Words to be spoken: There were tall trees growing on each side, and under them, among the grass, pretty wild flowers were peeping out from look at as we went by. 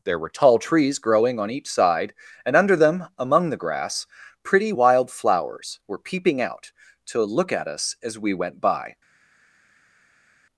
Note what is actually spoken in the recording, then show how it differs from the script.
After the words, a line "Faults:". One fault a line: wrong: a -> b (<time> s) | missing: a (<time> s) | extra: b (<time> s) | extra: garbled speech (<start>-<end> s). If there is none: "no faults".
There were tall trees growing on each side, and under them, among the grass, pretty wild flowers were peeping out to look at us as we went by.
Faults:
wrong: from -> to (7.1 s)
extra: us (7.7 s)